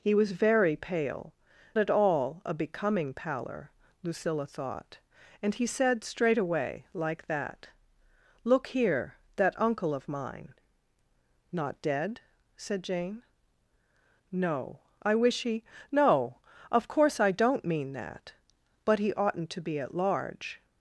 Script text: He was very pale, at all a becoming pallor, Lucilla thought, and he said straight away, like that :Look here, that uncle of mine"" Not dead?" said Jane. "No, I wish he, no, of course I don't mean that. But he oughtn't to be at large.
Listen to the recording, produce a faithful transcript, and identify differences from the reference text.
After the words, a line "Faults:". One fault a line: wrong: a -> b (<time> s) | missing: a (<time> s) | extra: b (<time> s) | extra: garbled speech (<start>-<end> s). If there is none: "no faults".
He was very pale, at all a becoming pallor, Lucilla thought, and he said straight away, like that :Look here, that uncle of mine"" Not dead?" said Jane. "No, I wish he, no, of course I don't mean that. But he oughtn't to be at large.
Faults:
no faults